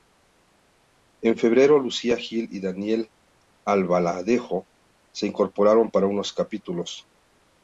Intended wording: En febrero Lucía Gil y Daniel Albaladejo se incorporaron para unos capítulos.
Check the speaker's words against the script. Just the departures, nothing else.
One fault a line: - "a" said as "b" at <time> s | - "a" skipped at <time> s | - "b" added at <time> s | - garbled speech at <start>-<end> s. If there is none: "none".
none